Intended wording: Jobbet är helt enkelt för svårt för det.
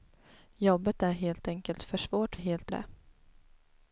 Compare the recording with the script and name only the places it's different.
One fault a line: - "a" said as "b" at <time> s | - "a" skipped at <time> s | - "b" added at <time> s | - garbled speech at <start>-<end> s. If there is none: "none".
- "för" said as "helt" at 2.3 s